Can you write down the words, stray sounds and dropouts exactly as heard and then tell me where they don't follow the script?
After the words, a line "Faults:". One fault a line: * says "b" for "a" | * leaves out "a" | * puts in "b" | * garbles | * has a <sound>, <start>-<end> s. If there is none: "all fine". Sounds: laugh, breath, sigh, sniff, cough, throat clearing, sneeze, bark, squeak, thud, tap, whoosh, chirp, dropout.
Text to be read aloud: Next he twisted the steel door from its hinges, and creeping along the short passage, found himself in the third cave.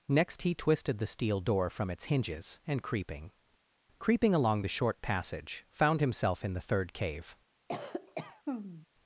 Next he twisted the steel door from its hinges, and creeping creeping along the short passage, found himself in the third cave.
Faults:
* puts in "creeping"
* has a cough, 7.7-8.9 s